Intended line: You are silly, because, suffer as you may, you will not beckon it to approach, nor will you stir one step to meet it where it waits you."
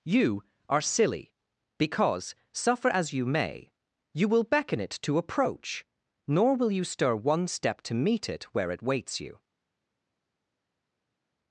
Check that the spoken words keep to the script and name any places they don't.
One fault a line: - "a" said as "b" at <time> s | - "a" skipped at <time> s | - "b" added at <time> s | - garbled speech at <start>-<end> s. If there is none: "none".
- "not" skipped at 4.4 s